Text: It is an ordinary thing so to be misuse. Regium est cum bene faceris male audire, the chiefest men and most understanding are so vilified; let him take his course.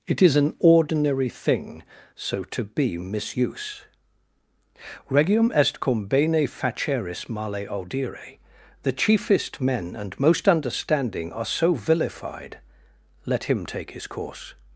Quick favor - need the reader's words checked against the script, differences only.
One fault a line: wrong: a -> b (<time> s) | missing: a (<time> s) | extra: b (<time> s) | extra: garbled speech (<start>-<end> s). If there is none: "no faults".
no faults